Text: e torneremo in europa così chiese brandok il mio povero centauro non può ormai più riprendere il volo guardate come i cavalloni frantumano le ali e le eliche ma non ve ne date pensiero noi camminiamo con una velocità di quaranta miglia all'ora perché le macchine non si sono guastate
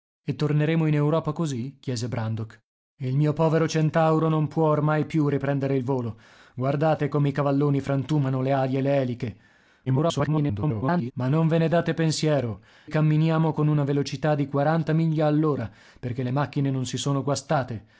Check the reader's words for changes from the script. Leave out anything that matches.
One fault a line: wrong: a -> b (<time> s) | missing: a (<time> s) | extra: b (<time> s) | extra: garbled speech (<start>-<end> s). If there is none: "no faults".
extra: garbled speech (9.9-11.1 s)
missing: noi (12.6 s)